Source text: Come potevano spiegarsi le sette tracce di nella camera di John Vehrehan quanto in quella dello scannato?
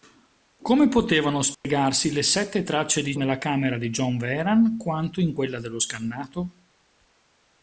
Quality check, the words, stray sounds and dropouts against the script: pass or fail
fail